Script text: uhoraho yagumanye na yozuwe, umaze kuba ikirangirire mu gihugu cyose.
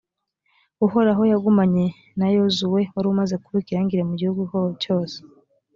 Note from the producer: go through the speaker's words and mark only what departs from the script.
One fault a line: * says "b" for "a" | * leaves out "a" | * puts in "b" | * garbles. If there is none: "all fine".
* puts in "wari"